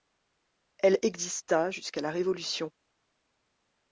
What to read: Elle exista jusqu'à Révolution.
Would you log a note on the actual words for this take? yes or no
yes